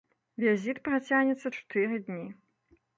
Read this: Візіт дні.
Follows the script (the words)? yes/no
no